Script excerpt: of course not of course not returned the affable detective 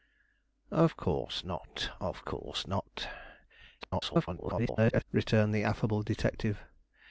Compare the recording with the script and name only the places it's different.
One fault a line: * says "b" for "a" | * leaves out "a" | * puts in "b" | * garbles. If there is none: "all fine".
* garbles